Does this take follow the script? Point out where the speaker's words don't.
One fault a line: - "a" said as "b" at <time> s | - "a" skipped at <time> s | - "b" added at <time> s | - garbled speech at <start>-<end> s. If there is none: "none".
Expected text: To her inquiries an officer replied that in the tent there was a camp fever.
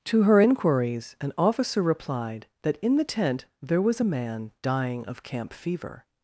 - "man dying of" added at 4.0 s